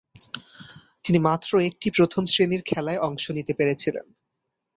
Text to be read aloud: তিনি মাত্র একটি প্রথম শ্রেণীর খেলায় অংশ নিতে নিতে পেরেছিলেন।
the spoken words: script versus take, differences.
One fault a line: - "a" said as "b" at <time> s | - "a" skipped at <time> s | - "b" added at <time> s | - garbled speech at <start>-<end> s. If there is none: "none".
- "নিতে" skipped at 3.5 s